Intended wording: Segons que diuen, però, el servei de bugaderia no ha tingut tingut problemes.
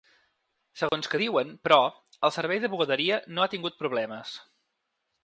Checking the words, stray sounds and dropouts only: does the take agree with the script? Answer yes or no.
no